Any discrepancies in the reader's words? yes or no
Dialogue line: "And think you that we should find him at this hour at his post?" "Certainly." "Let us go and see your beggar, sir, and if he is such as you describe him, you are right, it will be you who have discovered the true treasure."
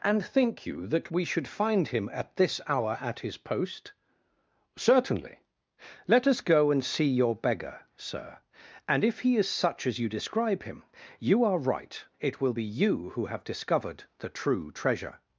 no